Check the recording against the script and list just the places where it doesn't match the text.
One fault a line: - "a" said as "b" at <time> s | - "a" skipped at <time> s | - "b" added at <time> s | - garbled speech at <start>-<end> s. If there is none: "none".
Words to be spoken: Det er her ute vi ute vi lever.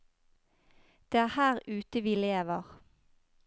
- "ute vi" skipped at 2.1 s